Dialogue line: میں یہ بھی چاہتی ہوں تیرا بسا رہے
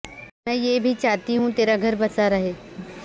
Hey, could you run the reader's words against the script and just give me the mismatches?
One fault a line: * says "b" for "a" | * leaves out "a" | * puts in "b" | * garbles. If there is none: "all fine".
* puts in "گھر"